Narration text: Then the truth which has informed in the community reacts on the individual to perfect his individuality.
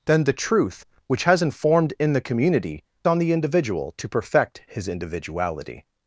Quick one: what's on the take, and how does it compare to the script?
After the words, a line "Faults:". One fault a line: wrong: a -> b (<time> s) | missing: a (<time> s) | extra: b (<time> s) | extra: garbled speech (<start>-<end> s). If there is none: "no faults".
Then the truth which has informed in the community on the individual to perfect his individuality.
Faults:
missing: reacts (2.8 s)